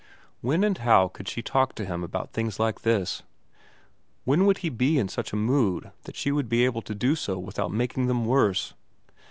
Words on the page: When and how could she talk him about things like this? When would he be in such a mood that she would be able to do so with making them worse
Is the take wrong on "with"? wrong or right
wrong